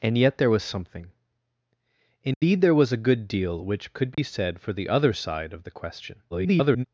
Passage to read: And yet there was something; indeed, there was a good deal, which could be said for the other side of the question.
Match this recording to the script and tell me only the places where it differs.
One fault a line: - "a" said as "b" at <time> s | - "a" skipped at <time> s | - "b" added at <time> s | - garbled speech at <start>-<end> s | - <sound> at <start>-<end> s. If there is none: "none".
- dropout at 2.3-2.4 s
- dropout at 4.1-4.2 s
- garbled speech at 6.3-6.8 s